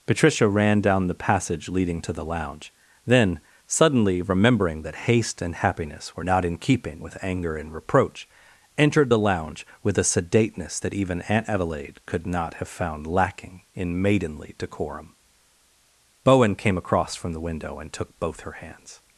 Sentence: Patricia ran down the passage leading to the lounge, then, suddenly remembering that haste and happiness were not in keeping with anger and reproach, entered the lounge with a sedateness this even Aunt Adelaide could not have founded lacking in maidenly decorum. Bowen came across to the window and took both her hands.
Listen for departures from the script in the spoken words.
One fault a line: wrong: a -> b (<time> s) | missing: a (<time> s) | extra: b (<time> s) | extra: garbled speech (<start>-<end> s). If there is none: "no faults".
wrong: this -> that (10.8 s)
wrong: founded -> found (12.7 s)
wrong: to -> from (17.1 s)